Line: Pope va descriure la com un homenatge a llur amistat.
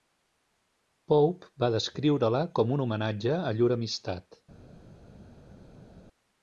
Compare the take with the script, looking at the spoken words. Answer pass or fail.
pass